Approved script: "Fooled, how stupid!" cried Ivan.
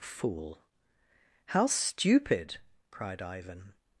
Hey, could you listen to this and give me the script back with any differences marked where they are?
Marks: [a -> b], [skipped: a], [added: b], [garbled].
["Fooled, -> Fool] how stupid!" cried Ivan.